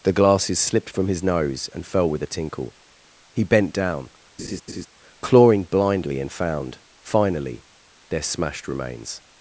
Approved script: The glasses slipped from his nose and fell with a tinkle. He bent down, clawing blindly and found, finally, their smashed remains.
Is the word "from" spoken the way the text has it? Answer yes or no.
yes